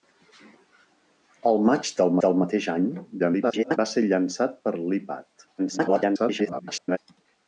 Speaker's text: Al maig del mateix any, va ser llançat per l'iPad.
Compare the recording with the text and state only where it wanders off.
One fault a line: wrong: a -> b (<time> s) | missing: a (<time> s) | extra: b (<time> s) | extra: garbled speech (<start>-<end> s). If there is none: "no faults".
extra: del (2.2 s)
extra: garbled speech (3.2-3.8 s)
extra: garbled speech (5.6-7.0 s)